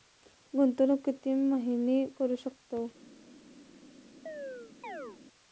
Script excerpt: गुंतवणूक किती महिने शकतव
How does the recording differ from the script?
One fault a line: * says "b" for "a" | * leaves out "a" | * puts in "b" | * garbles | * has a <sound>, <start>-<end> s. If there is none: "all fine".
* puts in "करू"
* has a chirp, 4.3-5.2 s